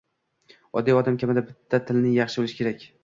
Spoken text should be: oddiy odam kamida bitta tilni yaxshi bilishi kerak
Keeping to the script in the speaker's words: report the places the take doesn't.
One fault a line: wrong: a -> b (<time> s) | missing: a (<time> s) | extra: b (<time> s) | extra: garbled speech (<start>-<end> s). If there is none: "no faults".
no faults